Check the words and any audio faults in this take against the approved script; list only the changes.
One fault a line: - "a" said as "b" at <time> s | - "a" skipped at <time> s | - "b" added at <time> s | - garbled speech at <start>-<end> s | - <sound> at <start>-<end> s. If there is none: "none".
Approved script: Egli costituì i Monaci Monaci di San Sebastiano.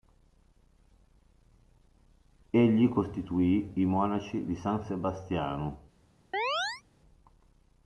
- "Monaci" skipped at 4.5 s
- chirp at 6.3-6.8 s